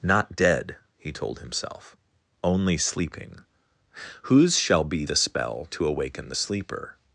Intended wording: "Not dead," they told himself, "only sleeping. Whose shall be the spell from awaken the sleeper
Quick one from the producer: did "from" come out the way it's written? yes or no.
no